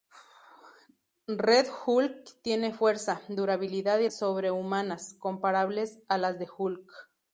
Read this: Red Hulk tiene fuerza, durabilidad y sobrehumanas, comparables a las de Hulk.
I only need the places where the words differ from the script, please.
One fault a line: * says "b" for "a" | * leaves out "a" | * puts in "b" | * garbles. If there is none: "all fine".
all fine